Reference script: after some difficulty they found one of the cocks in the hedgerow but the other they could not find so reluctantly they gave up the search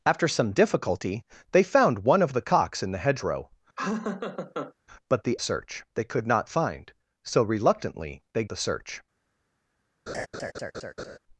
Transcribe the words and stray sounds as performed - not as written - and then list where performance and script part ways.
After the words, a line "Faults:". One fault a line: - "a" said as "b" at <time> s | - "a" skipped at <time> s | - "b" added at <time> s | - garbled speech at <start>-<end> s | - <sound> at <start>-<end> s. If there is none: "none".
after some difficulty they found one of the cocks in the hedgerow but the search they could not find so reluctantly they the search
Faults:
- laugh at 3.8-4.7 s
- "other" said as "search" at 5.4 s
- "gave up" skipped at 8.4 s
- laugh at 10.1-11.2 s